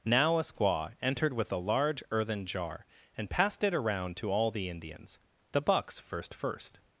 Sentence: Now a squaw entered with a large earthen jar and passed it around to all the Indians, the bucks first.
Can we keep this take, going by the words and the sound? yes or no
no